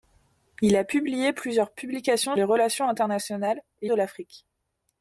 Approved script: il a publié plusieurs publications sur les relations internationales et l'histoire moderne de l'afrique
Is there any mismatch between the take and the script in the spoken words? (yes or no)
yes